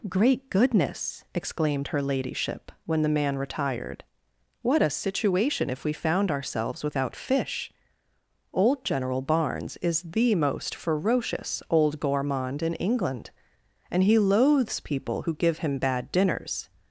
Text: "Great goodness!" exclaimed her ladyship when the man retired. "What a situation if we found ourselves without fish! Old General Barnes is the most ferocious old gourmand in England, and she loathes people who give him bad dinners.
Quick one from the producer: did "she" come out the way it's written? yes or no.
no